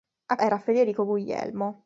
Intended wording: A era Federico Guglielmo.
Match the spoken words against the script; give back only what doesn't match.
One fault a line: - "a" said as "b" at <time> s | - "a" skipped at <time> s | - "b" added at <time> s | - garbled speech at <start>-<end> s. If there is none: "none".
none